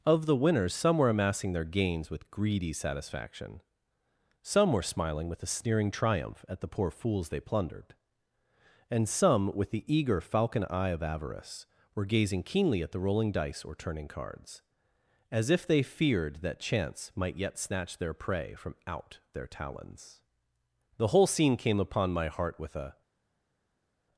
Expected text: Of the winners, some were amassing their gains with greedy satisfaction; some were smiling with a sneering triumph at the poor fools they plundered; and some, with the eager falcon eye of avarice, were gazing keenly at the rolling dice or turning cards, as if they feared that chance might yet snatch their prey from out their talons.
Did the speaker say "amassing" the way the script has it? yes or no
yes